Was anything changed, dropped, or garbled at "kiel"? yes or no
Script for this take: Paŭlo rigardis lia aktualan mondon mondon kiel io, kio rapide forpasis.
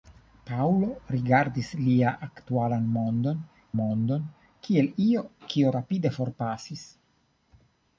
no